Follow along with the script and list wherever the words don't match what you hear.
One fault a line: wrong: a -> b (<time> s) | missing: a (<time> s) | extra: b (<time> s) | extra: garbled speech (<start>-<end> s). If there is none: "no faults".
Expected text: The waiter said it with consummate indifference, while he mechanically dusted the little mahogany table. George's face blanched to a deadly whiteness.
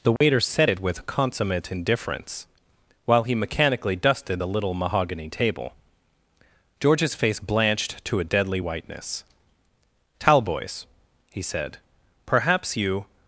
extra: Talboys he said perhaps you (10.2 s)